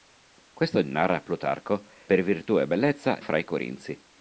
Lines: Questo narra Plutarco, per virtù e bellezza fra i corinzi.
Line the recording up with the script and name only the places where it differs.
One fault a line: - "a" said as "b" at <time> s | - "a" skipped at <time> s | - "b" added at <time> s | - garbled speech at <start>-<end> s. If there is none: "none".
none